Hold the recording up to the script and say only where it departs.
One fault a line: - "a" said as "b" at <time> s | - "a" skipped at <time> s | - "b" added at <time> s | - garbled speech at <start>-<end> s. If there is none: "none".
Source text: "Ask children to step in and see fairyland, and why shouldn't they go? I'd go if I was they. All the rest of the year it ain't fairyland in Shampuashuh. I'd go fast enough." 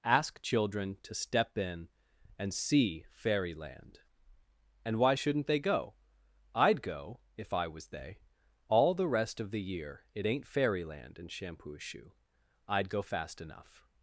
none